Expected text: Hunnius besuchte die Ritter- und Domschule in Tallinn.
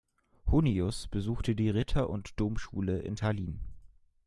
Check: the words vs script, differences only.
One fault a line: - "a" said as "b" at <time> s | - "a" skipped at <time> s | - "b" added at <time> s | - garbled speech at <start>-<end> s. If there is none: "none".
none